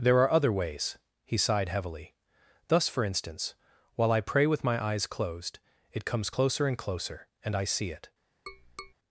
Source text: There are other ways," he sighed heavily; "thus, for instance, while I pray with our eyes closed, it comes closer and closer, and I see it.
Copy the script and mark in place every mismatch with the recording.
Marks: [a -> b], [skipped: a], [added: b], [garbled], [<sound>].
There are other ways," he sighed heavily; "thus, for instance, while I pray with [our -> my] eyes closed, it comes closer and closer, and I see it. [tap]